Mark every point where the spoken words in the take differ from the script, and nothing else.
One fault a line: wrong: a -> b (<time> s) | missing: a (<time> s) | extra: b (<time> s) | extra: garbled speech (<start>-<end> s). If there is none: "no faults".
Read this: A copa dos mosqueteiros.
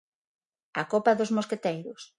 no faults